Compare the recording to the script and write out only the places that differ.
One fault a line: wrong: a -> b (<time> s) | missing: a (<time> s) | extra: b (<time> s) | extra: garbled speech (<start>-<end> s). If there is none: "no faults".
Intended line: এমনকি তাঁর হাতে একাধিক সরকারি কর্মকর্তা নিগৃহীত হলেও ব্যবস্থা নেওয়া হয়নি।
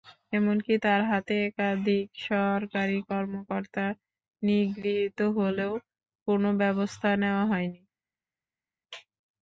extra: কোনো (6.3 s)